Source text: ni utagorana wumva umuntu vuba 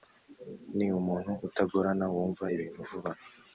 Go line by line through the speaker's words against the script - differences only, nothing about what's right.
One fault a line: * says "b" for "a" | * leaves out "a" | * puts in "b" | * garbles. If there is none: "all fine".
* puts in "umuntu"
* says "ibintu" for "umuntu"